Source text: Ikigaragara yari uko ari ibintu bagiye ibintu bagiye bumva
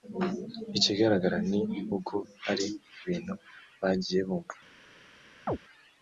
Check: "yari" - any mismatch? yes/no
yes